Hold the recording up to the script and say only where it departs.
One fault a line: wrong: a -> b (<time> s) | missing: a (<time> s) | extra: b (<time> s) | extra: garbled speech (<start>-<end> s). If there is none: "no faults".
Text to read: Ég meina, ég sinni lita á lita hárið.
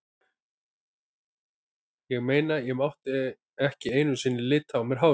extra: mátti ekki einu (2.7 s)
wrong: lita -> mér (4.8 s)